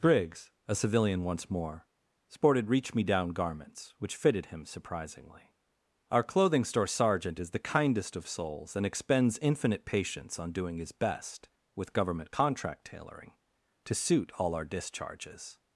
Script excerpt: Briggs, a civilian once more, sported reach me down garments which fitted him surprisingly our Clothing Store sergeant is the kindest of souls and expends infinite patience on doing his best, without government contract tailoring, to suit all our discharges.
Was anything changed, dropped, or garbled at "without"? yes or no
yes